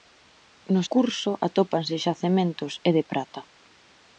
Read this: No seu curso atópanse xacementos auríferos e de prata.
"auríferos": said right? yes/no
no